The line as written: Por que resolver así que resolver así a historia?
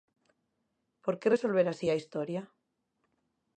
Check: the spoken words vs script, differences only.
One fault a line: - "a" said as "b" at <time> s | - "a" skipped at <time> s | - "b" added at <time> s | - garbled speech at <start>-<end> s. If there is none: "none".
- "que resolver así" skipped at 1.9 s